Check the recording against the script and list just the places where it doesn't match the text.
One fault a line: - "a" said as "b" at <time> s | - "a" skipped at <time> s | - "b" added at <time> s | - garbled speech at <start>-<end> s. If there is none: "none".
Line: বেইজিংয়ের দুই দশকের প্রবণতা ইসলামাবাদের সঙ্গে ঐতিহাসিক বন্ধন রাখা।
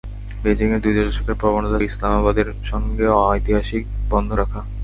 none